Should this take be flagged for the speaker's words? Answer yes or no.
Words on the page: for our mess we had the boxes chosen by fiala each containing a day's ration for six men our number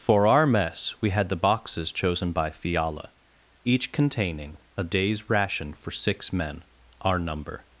no